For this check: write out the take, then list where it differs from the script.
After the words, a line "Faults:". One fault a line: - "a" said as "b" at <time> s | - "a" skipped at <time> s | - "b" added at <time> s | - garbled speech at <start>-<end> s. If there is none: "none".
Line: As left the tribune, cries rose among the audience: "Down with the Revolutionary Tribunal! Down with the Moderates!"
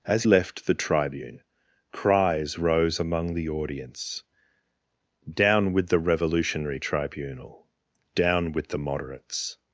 As left the tribune, cries rose among the audience: "Down with the Revolutionary Tribunal! Down with the Moderates!"
Faults:
none